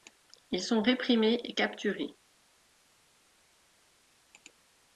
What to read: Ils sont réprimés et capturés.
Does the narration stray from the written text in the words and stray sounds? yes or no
no